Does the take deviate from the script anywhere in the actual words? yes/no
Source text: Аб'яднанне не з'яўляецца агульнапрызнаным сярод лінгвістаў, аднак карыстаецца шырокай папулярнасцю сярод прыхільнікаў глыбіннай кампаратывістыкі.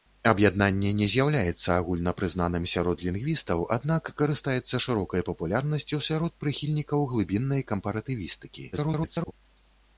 yes